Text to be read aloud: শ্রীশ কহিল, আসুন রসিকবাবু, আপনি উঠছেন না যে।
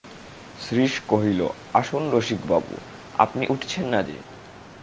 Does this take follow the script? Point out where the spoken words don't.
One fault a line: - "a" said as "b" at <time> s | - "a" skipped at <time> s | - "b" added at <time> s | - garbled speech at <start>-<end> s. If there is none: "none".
none